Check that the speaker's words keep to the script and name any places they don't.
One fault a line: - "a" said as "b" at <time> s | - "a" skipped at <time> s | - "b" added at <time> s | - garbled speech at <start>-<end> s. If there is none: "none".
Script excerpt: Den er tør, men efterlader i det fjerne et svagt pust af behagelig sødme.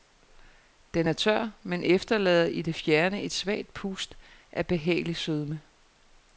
none